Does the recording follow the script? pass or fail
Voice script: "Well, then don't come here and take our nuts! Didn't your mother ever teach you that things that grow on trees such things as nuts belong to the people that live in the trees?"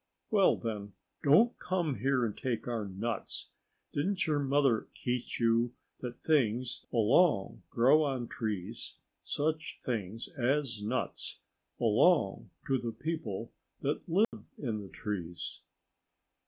fail